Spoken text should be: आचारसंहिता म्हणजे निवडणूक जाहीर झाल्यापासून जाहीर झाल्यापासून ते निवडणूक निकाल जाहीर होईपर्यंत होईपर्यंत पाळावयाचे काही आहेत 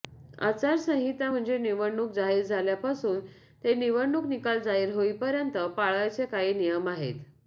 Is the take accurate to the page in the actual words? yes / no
no